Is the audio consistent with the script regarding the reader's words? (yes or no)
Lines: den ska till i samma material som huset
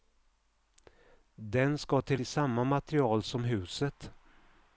yes